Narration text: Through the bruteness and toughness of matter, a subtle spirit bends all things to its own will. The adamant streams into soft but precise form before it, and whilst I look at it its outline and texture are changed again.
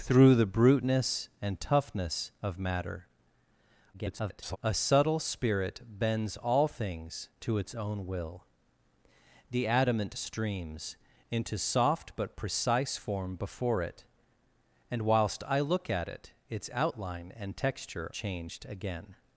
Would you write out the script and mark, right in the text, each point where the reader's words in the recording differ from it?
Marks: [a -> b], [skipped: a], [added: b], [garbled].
Through the bruteness and toughness of matter, [garbled] a subtle spirit bends all things to its own will. The adamant streams into soft but precise form before it, and whilst I look at it its outline and texture [skipped: are] changed again.